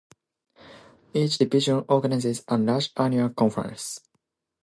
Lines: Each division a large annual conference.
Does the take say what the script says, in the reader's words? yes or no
no